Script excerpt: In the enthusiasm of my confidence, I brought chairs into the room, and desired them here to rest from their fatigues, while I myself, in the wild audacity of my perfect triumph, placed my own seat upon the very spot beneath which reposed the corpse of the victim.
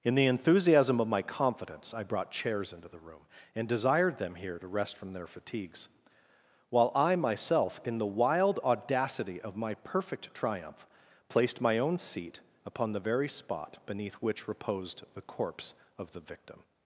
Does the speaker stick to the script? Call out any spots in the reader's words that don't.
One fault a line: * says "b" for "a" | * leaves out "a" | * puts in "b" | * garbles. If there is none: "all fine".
all fine